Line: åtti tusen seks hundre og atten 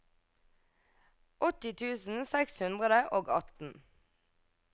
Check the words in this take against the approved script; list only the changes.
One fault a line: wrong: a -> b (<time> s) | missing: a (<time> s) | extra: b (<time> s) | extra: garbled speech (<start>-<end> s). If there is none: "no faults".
no faults